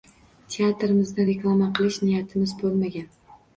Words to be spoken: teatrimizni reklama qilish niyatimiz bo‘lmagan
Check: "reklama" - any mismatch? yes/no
no